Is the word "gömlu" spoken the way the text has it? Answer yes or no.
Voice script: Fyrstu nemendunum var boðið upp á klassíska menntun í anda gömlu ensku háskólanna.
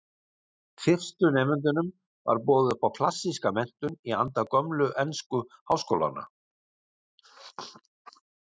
yes